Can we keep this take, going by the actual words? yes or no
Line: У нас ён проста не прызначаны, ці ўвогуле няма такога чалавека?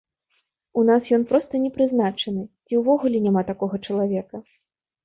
yes